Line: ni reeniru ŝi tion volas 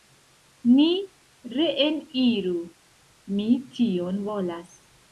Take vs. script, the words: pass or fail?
fail